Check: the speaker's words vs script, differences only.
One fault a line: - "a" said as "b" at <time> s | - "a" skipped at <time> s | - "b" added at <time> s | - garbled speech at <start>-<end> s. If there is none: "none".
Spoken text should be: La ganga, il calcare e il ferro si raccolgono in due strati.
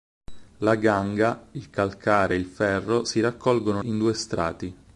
none